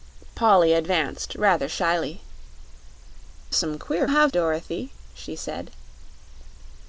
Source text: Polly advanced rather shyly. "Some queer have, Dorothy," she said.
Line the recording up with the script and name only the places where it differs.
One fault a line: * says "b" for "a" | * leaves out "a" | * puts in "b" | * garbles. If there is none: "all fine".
all fine